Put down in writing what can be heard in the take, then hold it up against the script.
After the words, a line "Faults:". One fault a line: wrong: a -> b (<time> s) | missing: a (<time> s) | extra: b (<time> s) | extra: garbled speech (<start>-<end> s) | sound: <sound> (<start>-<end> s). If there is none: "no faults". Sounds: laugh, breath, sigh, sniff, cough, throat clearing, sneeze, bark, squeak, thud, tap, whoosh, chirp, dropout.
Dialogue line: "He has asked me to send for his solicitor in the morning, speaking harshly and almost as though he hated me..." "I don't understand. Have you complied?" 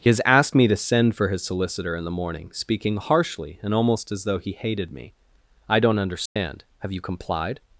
"He has asked me to send for his solicitor in the morning, speaking harshly and almost as though he hated me..." "I don't understand. Have you complied?"
Faults:
sound: dropout (6.3-6.4 s)